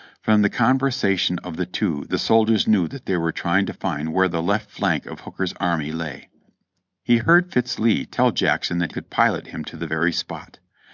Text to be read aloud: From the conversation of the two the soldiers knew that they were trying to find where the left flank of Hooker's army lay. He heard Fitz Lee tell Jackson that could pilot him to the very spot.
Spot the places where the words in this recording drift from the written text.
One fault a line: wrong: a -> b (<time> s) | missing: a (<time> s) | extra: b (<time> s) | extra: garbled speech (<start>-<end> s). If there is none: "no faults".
no faults